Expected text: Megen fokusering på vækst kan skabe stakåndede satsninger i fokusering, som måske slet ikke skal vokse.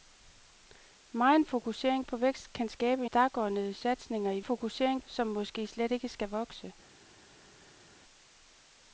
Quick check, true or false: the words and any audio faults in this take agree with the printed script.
true